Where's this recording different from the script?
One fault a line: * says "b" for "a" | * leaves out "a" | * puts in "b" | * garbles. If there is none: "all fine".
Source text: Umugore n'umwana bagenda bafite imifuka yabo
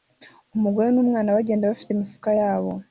all fine